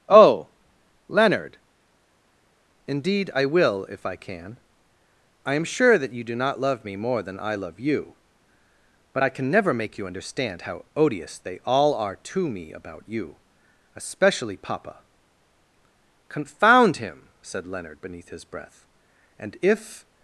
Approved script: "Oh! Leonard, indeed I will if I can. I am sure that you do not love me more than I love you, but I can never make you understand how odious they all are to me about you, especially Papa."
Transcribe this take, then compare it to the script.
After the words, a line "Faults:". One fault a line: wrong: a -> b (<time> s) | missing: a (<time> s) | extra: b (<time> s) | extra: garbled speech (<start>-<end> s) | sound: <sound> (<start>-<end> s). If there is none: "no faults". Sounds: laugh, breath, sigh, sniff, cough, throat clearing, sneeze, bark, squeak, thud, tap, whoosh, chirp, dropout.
"Oh! Leonard, indeed I will if I can. I am sure that you do not love me more than I love you, but I can never make you understand how odious they all are to me about you, especially Papa." "Confound him!" said Leonard beneath his breath; and if
Faults:
extra: Confound him said Leonard beneath his breath and if (16.3 s)